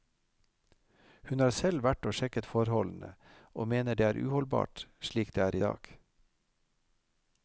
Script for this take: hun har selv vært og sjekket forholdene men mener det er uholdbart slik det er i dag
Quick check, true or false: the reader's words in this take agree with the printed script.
false